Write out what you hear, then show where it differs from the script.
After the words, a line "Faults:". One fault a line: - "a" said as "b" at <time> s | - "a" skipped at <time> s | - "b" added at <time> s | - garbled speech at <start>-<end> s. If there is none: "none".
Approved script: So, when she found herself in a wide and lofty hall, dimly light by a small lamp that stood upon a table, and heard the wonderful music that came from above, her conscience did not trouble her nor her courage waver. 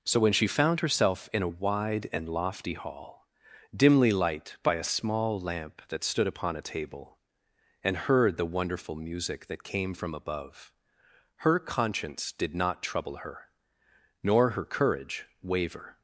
So, when she found herself in a wide and lofty hall, dimly light by a small lamp that stood upon a table, and heard the wonderful music that came from above, her conscience did not trouble her nor her courage waver.
Faults:
none